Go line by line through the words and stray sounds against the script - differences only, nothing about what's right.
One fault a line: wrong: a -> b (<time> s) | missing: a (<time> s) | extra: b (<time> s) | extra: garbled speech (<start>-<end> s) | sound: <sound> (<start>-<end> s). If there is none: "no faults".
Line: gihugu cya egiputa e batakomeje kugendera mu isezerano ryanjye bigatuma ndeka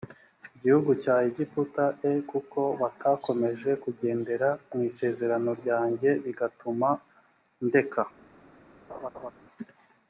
extra: kuko (2.3 s)
sound: laugh (8.9-9.3 s)